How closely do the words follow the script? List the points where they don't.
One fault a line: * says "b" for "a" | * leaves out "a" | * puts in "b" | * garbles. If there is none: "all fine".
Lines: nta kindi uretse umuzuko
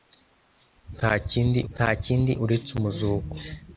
* puts in "nta kindi"